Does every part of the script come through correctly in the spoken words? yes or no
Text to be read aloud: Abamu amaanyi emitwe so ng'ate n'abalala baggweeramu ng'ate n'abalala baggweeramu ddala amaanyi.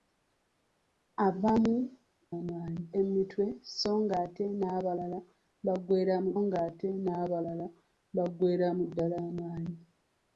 yes